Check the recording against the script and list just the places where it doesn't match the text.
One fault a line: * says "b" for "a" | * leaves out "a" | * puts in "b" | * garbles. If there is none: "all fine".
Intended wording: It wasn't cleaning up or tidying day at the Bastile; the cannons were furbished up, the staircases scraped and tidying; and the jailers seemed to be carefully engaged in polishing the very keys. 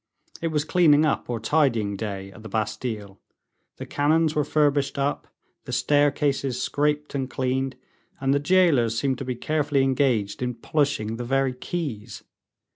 * says "was" for "wasn't"
* says "cleaned" for "tidying"